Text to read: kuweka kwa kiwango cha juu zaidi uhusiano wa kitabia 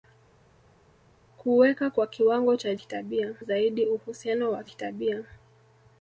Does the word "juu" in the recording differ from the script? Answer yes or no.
yes